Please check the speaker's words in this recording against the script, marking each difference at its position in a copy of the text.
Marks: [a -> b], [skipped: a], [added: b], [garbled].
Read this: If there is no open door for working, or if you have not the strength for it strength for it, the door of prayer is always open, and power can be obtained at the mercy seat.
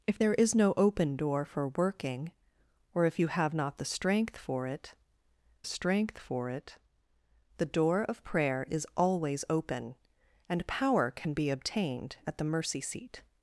If there is no open door for working, or if you have not the strength for it strength for it, the door of prayer is always open, and power can be obtained at the mercy seat.